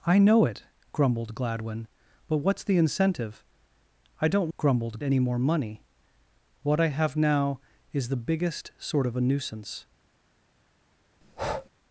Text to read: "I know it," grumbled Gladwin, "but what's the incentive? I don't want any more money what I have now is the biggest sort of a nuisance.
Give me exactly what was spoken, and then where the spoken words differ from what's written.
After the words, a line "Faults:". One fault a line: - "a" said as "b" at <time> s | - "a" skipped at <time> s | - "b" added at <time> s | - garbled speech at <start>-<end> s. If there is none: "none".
"I know it," grumbled Gladwin, "but what's the incentive? I don't grumbled any more money what I have now is the biggest sort of a nuisance.
Faults:
- "want" said as "grumbled" at 4.6 s